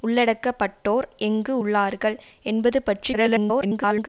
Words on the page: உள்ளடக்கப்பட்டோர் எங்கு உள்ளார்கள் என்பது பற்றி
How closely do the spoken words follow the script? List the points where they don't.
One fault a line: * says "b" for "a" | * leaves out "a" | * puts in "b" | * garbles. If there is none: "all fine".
* garbles